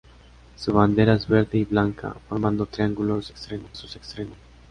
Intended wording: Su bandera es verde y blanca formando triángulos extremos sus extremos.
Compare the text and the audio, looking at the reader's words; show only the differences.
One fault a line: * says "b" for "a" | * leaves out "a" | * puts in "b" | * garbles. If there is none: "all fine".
all fine